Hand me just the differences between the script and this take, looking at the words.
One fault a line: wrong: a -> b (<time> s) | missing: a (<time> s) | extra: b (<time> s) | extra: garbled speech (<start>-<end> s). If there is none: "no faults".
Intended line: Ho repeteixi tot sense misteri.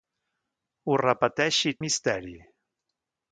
missing: tot sense (1.8 s)